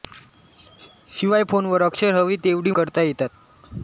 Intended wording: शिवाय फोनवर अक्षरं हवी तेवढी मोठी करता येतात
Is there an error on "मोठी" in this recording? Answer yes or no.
yes